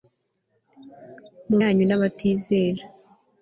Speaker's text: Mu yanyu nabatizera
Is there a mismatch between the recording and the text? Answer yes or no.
no